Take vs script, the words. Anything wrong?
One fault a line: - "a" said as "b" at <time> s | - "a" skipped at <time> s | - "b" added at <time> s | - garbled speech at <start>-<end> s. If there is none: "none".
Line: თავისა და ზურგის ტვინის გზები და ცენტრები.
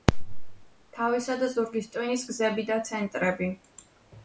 none